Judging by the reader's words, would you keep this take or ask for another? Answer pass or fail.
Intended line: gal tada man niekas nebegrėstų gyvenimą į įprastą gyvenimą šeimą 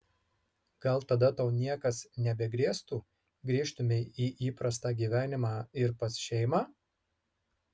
fail